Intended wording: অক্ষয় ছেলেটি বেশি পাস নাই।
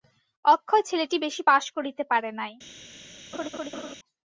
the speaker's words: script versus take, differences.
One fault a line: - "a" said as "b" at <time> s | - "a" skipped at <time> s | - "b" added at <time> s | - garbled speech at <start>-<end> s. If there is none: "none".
- "করিতে পারে" added at 1.8 s